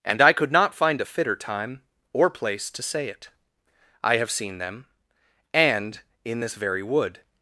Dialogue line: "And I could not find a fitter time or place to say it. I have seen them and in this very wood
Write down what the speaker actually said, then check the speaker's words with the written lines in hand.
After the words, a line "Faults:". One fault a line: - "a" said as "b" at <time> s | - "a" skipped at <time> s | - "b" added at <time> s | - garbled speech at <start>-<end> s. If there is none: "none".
"And I could not find a fitter time or place to say it. I have seen them and in this very wood
Faults:
none